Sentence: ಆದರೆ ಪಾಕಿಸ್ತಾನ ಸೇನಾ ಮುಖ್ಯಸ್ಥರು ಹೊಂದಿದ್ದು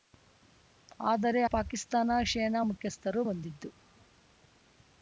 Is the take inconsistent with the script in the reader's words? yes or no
no